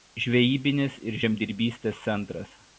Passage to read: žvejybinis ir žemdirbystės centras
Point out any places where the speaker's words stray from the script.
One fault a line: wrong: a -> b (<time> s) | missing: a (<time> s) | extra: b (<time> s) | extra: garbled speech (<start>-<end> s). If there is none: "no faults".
no faults